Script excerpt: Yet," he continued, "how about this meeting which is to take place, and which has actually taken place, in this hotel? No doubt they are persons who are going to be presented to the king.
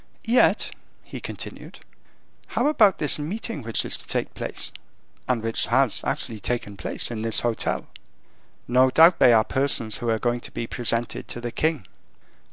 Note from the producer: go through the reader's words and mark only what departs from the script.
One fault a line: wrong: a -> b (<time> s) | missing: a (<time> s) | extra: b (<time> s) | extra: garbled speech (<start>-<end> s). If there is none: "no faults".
no faults